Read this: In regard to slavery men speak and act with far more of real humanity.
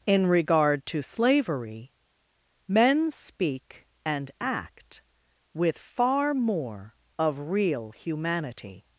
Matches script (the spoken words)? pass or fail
pass